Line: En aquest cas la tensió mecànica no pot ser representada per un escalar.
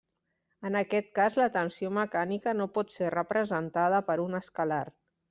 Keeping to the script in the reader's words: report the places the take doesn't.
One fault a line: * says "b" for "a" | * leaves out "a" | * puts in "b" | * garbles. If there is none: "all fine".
all fine